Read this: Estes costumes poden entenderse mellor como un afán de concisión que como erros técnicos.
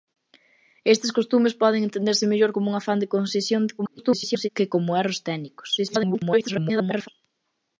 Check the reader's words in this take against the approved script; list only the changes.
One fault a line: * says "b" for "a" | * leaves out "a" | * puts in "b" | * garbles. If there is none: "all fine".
* garbles
* garbles